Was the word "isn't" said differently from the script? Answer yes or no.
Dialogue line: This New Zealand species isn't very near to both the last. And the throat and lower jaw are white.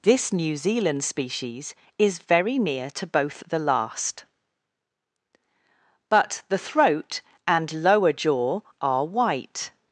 yes